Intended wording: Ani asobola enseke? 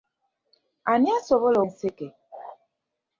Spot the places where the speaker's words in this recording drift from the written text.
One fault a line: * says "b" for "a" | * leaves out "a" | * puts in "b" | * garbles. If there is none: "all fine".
all fine